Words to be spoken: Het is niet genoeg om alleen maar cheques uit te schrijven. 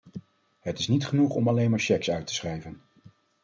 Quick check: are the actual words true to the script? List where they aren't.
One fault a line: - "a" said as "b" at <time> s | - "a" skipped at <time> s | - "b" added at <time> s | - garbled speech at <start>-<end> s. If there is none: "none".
none